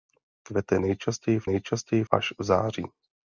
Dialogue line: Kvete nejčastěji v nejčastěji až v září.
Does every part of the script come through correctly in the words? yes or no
yes